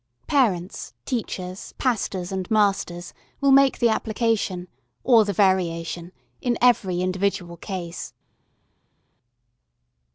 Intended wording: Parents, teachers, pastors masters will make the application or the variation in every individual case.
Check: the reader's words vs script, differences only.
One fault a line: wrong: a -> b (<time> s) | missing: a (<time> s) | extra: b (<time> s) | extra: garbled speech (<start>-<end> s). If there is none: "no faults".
extra: and (2.3 s)